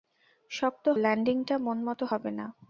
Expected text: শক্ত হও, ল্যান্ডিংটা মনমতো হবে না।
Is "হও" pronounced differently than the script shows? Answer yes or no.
yes